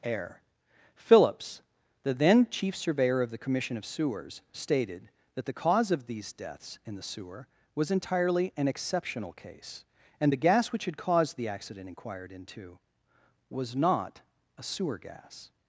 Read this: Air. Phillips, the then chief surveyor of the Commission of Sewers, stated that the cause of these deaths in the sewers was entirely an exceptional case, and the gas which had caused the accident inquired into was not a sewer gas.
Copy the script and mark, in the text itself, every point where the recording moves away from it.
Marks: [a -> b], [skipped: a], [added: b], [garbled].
Air. Phillips, the then chief surveyor of the Commission of Sewers, stated that the cause of these deaths in the [sewers -> sewer] was entirely an exceptional case, and the gas which had caused the accident inquired into was not a sewer gas.